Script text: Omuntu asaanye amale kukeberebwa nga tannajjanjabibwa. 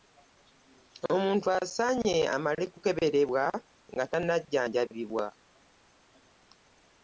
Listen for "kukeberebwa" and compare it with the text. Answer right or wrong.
right